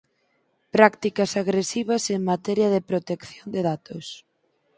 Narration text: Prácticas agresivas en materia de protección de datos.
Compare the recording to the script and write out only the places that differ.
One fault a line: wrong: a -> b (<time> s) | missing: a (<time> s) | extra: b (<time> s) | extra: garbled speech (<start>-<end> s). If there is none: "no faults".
no faults